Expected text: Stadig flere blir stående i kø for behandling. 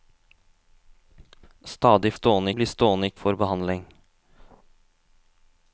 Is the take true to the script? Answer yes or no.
no